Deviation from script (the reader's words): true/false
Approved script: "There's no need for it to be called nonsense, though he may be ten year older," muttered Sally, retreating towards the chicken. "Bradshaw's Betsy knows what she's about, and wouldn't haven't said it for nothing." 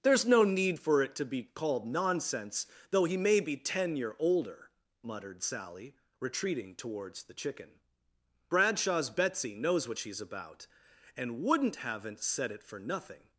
false